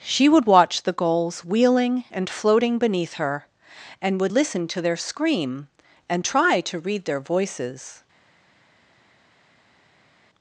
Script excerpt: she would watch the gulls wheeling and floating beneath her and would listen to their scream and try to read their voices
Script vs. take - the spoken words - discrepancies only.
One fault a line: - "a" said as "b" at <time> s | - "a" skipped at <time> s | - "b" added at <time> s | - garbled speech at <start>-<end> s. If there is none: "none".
none